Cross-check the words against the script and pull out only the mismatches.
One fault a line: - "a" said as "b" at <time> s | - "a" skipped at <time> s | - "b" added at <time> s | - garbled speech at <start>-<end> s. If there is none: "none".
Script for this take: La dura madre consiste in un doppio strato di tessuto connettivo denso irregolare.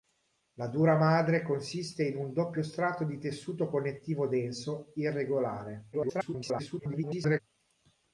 - garbled speech at 5.9-7.4 s